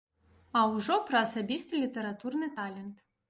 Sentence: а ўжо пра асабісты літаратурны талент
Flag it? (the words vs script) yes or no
no